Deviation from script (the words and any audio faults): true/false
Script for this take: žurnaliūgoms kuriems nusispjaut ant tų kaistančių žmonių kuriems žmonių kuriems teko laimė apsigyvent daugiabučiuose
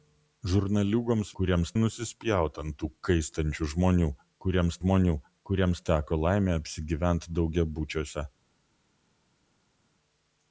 false